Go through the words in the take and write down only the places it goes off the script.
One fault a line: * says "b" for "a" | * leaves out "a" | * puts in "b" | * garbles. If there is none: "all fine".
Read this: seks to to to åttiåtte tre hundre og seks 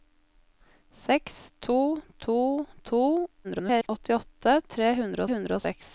* garbles
* puts in "hundre"